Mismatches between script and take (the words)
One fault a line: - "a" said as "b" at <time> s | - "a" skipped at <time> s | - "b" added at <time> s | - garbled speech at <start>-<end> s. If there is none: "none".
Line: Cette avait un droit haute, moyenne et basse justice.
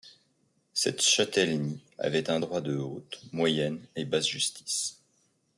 - "châtellenie" added at 1.0 s
- "de" added at 2.6 s